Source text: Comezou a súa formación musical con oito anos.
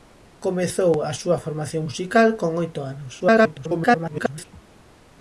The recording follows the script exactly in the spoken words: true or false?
false